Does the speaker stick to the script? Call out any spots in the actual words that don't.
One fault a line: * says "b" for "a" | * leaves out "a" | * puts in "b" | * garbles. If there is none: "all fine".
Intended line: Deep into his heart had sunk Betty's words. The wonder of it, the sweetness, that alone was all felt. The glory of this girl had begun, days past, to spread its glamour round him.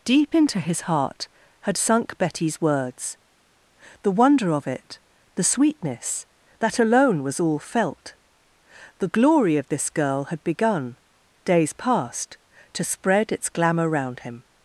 all fine